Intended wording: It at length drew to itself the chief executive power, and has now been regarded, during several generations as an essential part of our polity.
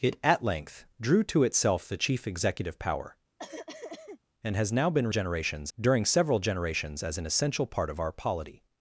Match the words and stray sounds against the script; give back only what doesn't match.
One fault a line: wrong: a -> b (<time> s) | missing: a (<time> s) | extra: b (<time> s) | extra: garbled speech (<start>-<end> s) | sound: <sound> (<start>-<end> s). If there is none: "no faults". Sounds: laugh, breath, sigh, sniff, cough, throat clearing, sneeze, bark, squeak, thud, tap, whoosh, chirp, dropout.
sound: cough (3.4-4.2 s)
wrong: regarded -> generations (5.1 s)